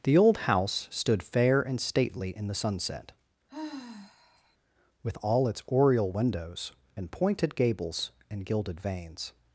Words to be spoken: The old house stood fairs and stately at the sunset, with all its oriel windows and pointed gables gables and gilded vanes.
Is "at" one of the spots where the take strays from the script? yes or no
yes